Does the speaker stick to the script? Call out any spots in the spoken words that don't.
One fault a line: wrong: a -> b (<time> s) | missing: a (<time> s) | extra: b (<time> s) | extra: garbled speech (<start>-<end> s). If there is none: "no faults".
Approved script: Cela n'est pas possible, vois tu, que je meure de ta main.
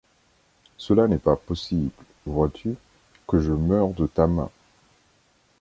no faults